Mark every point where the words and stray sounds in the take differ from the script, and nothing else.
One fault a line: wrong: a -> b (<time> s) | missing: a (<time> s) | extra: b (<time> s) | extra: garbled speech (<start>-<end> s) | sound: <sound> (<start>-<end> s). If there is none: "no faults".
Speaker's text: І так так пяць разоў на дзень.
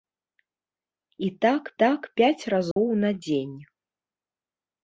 sound: dropout (2.7-2.8 s)